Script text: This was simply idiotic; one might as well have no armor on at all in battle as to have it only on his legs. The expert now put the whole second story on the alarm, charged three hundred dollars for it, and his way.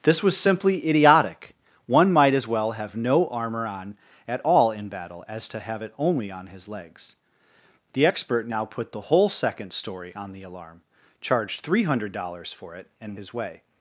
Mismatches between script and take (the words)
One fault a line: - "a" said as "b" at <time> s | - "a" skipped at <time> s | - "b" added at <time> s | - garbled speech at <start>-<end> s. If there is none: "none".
none